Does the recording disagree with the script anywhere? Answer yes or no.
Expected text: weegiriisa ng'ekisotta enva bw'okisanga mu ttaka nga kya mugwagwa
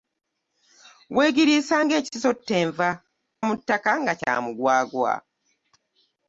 yes